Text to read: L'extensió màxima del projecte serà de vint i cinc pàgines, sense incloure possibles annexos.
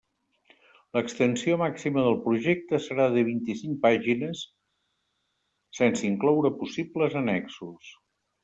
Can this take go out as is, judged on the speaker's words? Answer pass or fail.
pass